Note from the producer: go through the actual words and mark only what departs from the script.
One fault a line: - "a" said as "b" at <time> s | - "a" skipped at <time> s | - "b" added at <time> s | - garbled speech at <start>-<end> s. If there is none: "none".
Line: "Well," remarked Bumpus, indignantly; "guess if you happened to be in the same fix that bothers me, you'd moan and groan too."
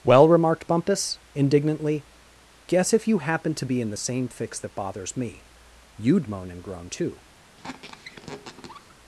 none